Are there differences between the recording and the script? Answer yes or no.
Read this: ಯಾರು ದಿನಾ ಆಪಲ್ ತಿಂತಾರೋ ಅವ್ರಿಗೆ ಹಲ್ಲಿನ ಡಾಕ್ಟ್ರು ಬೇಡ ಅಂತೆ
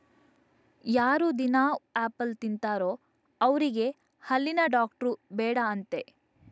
no